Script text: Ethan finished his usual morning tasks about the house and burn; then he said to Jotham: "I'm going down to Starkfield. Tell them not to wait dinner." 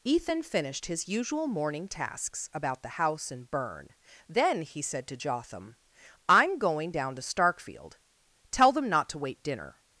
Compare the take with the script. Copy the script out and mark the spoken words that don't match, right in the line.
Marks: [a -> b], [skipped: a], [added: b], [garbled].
Ethan finished his usual morning tasks about the house and burn; then he said to Jotham: "I'm going down to Starkfield. Tell them not to wait dinner."